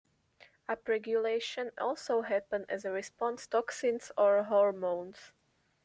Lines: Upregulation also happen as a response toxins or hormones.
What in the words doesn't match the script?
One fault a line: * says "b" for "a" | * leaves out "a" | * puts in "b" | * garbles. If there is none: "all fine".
all fine